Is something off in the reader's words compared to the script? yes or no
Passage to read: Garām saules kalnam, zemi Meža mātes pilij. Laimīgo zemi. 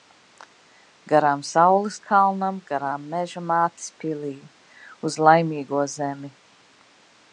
yes